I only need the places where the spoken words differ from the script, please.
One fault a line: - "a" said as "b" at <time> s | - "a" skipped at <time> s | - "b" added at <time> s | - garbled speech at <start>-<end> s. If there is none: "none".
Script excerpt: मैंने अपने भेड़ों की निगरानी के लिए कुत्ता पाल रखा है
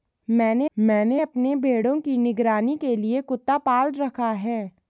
- "मैंने" added at 0.8 s